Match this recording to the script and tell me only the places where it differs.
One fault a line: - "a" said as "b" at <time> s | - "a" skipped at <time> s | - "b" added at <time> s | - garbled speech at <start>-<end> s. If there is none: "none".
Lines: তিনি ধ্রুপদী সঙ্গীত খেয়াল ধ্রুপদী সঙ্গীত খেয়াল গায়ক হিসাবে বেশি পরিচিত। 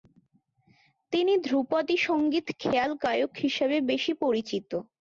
- "ধ্রুপদী সঙ্গীত খেয়াল" skipped at 2.9 s